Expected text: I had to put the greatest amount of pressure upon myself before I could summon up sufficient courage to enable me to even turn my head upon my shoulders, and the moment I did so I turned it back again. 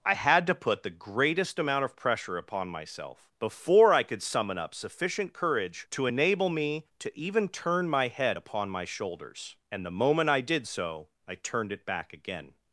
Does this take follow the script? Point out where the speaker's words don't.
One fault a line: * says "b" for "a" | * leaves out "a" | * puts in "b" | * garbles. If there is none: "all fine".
all fine